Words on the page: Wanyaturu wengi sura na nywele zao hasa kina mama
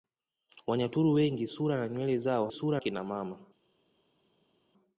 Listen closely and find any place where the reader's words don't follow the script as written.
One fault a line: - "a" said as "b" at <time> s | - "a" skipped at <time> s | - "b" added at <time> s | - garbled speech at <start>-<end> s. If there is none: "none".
- "hasa" said as "sura" at 2.5 s